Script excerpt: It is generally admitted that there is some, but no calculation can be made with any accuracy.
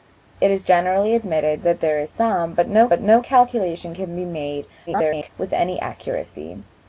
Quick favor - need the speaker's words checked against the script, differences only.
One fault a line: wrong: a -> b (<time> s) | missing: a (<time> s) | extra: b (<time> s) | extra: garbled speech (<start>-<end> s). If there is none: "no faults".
extra: but no (2.9 s)
extra: garbled speech (4.9-5.3 s)